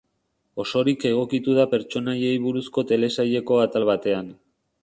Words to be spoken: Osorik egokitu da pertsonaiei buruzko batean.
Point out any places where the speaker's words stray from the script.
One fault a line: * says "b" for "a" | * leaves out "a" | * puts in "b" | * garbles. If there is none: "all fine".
* puts in "telesaileko atal"